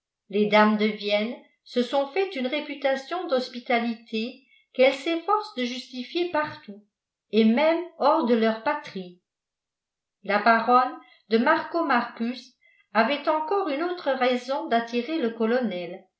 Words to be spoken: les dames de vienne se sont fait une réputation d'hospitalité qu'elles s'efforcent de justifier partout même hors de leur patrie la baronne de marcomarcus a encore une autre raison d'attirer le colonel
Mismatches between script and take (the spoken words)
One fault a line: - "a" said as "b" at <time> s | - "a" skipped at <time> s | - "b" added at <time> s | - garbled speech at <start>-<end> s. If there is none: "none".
- "et" added at 7.3 s
- "a" said as "avait" at 12.9 s